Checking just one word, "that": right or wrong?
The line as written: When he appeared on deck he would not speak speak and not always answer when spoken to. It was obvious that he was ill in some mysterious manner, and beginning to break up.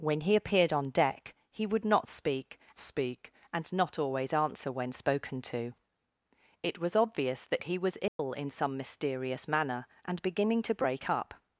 right